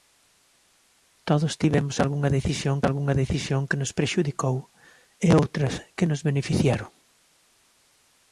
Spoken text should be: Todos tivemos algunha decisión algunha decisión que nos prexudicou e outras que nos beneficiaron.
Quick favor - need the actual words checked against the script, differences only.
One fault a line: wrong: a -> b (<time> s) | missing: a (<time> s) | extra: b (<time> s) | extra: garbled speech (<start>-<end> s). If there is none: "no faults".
no faults